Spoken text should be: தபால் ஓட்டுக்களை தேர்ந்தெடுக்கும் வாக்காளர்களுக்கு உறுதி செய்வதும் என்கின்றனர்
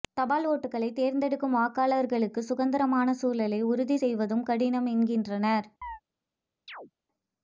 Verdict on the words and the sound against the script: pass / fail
fail